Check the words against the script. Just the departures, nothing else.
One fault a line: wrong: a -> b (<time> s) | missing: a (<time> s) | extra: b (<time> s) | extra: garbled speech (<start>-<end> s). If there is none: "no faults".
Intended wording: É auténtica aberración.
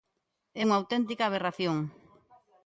extra: unha (0.6 s)